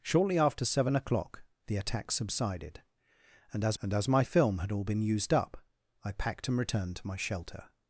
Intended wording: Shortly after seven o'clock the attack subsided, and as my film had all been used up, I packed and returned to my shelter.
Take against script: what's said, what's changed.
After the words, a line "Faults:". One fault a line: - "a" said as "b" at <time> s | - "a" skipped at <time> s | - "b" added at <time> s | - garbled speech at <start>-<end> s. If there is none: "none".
Shortly after seven o'clock the attack subsided, and as and as my film had all been used up, I packed and returned to my shelter.
Faults:
- "and as" added at 3.8 s